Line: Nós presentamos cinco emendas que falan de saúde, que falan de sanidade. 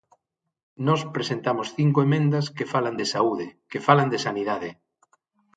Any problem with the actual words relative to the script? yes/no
no